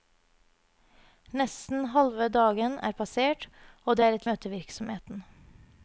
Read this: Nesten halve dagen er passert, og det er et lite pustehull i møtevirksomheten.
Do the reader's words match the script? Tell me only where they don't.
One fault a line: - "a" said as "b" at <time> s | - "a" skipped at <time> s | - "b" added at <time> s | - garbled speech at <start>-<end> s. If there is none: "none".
- "lite pustehull i" skipped at 4.3 s